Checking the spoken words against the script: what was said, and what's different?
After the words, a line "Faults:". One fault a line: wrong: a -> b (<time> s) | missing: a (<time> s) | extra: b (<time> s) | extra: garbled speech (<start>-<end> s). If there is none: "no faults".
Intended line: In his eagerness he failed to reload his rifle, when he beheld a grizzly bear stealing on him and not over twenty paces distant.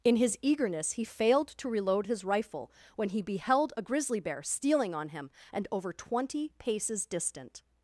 In his eagerness he failed to reload his rifle, when he beheld a grizzly bear stealing on him and over twenty paces distant.
Faults:
missing: not (5.7 s)